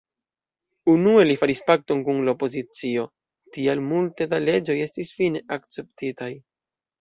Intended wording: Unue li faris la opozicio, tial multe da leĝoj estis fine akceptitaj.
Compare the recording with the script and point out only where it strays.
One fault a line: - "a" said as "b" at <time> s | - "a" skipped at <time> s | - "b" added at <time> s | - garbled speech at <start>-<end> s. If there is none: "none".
- "pakton kun" added at 1.7 s